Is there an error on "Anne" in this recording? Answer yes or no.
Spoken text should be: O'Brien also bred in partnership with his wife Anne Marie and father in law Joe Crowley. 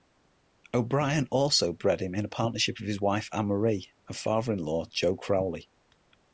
no